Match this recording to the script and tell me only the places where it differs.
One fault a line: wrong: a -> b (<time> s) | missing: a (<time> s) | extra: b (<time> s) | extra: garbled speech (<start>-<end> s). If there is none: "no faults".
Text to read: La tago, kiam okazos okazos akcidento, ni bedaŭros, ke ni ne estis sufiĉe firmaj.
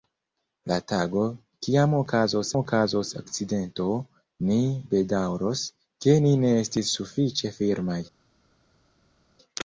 no faults